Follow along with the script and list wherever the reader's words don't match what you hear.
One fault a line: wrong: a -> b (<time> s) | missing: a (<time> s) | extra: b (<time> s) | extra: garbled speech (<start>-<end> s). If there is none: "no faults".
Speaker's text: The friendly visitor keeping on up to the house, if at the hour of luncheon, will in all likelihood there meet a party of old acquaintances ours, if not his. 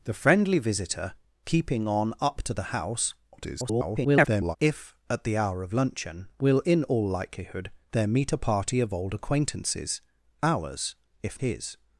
extra: garbled speech (3.3-4.6 s)
missing: not (11.4 s)